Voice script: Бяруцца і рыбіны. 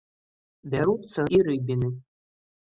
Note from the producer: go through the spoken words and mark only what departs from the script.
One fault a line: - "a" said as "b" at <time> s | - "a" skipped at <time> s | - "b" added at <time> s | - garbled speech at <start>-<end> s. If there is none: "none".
none